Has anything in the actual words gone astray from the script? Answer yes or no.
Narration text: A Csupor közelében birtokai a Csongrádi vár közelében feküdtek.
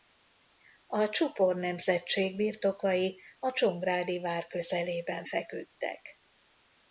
yes